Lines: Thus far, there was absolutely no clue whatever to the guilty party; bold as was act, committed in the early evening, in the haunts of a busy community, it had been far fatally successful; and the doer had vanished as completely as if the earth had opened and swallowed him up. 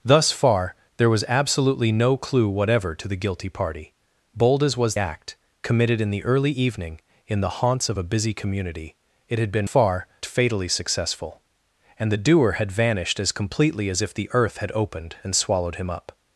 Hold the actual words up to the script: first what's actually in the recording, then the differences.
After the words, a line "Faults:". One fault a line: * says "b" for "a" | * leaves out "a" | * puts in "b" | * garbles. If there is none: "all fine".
Thus far, there was absolutely no clue whatever to the guilty party; bold as was act, committed in the early evening, in the haunts of a busy community, it had been far fatally successful; and the doer had vanished as completely as if the earth had opened and swallowed him up.
Faults:
all fine